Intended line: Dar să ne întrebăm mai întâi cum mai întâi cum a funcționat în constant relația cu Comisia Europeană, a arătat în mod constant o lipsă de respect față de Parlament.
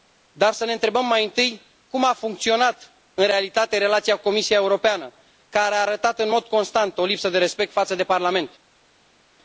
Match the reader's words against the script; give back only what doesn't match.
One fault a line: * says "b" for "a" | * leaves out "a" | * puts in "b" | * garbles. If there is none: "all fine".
* leaves out "mai întâi cum"
* says "realitate" for "constant"
* puts in "care"